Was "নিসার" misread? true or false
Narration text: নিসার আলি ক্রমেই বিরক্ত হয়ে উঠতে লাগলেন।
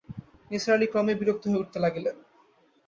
false